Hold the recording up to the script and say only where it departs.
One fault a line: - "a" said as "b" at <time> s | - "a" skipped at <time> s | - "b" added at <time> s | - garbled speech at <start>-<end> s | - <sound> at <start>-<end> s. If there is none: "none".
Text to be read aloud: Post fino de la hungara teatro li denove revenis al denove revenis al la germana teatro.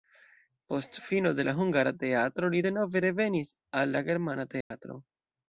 - "denove revenis al" skipped at 3.9 s
- dropout at 4.6-4.7 s